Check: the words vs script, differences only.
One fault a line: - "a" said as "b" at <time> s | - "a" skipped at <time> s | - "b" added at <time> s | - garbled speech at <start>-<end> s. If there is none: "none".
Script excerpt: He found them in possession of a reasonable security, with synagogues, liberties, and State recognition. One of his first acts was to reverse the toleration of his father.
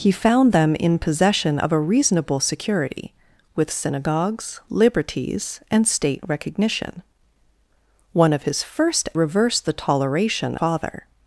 - "acts was to" skipped at 9.1 s
- "of his" skipped at 10.6 s